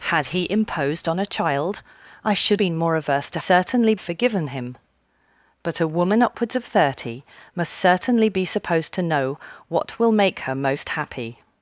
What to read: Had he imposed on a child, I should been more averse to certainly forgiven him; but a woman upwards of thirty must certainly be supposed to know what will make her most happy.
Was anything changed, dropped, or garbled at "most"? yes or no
no